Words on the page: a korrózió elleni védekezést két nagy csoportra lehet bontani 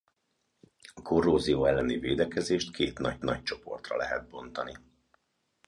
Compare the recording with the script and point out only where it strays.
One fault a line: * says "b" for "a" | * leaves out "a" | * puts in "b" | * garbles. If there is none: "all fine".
* puts in "nagy"